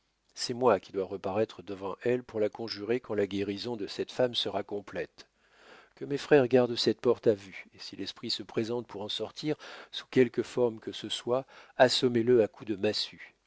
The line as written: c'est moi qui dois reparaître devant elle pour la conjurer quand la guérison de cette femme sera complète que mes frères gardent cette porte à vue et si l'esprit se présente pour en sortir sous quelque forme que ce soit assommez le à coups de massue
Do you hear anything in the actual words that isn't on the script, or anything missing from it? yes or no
no